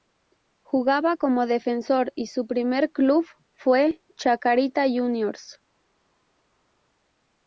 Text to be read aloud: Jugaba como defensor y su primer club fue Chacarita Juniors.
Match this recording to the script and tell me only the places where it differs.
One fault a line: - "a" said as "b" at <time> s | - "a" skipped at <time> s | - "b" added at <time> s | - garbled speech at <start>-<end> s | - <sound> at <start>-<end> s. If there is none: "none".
none